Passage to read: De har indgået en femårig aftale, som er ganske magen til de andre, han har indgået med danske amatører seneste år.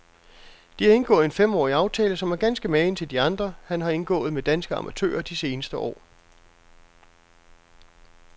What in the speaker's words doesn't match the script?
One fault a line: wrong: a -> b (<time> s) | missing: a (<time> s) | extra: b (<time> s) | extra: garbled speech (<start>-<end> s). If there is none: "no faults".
extra: de (5.2 s)